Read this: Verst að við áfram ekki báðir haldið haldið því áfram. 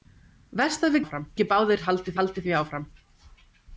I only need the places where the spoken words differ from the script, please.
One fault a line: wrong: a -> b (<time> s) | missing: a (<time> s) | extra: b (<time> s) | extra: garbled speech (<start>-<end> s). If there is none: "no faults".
no faults